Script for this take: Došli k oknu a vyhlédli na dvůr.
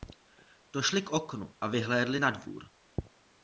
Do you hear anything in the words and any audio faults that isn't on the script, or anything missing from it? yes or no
no